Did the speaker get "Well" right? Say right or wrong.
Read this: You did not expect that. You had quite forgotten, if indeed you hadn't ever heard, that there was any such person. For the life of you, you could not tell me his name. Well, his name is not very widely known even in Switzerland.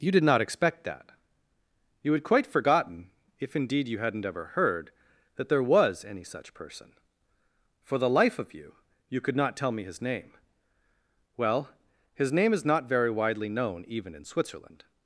right